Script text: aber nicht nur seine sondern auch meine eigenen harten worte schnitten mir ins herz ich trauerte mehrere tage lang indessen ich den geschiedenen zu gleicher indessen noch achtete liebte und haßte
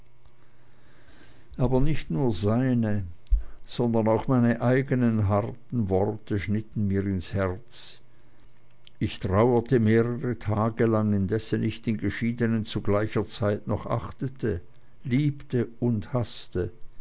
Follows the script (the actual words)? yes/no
no